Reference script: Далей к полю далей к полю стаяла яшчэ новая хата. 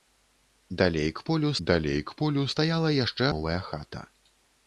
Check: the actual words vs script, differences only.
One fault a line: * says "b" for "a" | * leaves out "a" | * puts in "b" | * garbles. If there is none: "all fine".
all fine